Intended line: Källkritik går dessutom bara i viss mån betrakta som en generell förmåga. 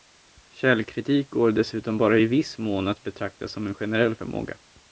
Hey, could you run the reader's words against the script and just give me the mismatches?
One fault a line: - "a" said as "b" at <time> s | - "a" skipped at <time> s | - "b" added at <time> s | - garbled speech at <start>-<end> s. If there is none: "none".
- "att" added at 2.9 s